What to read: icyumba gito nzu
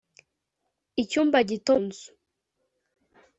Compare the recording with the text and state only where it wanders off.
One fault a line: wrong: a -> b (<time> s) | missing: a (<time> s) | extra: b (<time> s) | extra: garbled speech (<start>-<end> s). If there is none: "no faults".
no faults